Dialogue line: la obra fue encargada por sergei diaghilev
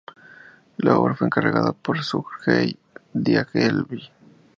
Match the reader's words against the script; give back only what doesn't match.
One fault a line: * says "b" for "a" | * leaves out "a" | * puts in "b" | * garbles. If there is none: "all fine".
all fine